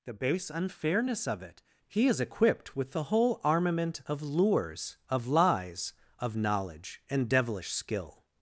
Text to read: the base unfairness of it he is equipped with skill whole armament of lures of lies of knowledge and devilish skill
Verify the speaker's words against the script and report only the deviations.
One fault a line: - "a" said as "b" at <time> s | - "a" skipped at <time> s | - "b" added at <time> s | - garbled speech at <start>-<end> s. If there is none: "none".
- "skill" said as "the" at 2.9 s